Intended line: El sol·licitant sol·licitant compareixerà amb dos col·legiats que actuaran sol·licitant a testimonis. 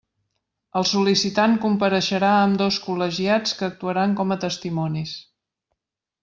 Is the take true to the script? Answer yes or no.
no